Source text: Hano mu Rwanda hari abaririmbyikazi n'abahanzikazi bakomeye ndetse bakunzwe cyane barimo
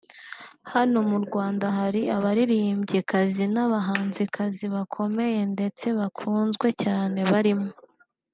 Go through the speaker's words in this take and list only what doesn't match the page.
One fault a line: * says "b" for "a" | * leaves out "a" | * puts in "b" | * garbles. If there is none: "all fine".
all fine